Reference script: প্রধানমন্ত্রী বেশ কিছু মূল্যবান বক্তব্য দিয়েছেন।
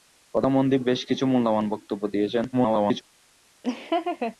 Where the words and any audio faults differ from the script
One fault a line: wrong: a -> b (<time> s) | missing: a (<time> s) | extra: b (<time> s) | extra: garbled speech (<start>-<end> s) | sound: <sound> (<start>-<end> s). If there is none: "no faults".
extra: garbled speech (2.5-3.0 s)
sound: laugh (3.6-4.4 s)